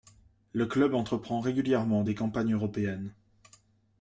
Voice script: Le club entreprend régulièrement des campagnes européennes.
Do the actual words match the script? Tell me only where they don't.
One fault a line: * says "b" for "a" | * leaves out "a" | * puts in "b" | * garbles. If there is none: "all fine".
all fine